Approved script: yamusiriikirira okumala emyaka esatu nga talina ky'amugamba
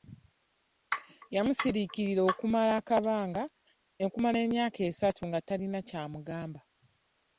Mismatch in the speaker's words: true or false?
false